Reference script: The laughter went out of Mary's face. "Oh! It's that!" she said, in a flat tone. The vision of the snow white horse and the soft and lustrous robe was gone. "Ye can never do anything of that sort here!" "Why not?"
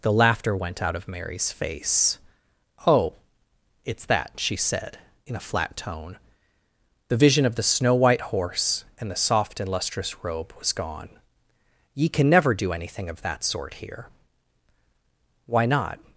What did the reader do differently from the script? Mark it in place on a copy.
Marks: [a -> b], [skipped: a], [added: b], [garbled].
The laughter went out of Mary's face. "Oh! It's that!" she said, in a flat tone. The vision of the snow white horse and the soft and lustrous robe was gone. "Ye can never do anything of that sort here!" "Why not?"